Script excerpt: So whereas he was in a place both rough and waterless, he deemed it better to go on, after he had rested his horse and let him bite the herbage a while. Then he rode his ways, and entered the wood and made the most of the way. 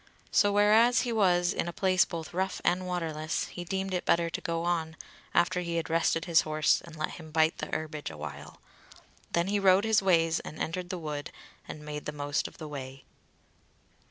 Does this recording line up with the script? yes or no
yes